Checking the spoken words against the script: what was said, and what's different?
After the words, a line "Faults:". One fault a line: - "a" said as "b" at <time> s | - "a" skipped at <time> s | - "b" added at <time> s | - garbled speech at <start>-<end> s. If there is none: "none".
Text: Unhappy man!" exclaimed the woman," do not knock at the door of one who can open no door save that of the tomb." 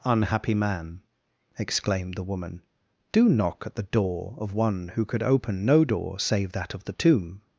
Unhappy man!" exclaimed the woman," do knock at the door of one who could open no door save that of the tomb."
Faults:
- "not" skipped at 3.3 s
- "can" said as "could" at 5.0 s